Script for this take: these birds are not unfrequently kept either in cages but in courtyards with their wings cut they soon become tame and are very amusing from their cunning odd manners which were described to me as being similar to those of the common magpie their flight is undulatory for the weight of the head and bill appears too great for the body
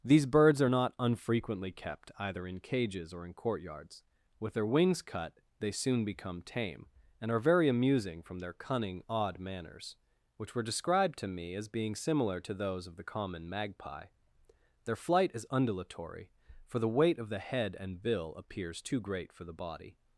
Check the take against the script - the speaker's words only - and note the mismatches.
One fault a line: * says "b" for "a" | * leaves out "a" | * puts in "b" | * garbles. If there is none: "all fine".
* says "or" for "but"